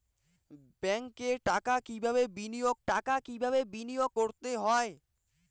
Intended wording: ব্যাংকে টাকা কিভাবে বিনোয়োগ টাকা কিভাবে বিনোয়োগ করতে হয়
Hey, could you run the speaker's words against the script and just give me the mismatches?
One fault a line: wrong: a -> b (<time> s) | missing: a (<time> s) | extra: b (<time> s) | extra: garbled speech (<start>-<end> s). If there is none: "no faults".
no faults